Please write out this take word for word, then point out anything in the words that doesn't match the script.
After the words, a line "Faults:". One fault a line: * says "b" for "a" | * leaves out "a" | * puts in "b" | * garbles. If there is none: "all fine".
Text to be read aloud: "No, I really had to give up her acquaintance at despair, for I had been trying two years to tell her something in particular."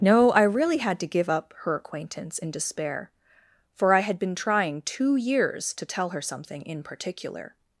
"No, I really had to give up her acquaintance in despair, for I had been trying two years to tell her something in particular."
Faults:
* says "in" for "at"